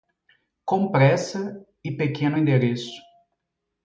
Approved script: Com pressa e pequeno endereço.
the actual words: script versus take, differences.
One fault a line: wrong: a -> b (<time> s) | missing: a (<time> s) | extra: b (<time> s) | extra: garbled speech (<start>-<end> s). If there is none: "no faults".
no faults